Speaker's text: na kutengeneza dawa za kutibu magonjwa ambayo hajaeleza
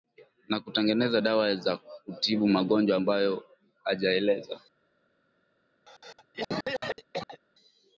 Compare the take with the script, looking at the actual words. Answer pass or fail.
pass